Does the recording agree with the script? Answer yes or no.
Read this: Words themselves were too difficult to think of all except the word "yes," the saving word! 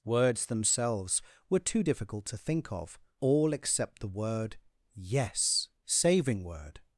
no